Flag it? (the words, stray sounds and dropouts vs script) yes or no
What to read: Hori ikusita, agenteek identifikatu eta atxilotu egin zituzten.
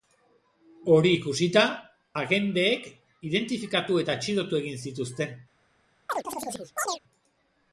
yes